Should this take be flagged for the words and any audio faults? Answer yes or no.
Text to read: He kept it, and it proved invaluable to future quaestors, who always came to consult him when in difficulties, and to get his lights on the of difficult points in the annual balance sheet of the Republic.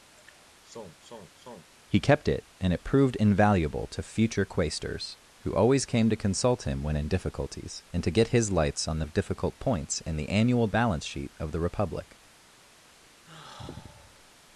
yes